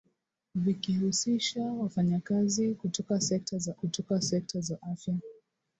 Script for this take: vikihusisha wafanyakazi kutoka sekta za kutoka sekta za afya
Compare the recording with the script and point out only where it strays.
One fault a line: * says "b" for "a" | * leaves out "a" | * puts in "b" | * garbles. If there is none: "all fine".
all fine